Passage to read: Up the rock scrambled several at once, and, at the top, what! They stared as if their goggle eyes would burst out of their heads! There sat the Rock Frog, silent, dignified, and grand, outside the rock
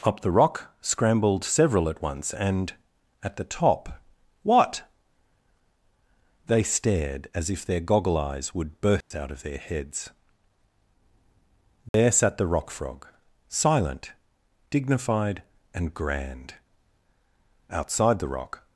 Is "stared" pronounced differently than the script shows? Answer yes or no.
no